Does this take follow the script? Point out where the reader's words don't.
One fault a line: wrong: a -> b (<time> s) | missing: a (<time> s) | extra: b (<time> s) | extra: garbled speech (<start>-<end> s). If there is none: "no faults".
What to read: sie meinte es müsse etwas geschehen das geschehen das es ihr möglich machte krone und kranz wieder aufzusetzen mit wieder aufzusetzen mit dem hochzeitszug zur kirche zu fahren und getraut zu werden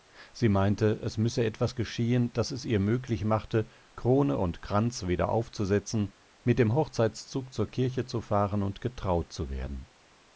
missing: geschehen das (2.5 s)
missing: wieder aufzusetzen mit (6.6 s)